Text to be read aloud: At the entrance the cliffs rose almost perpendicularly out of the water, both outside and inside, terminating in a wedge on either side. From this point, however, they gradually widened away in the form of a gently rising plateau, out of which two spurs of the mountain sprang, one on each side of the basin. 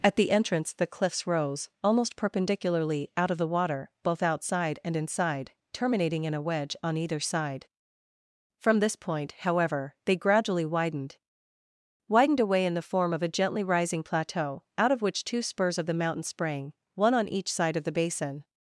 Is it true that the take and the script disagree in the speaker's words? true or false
true